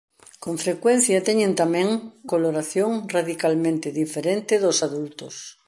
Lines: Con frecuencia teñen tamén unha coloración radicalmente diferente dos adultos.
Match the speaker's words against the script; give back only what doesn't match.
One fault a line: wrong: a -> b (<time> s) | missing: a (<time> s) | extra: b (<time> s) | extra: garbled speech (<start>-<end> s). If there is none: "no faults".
missing: unha (1.9 s)